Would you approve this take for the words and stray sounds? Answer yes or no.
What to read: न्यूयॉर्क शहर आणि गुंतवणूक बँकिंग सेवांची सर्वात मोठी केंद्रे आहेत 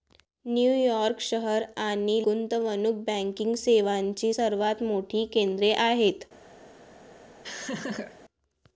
no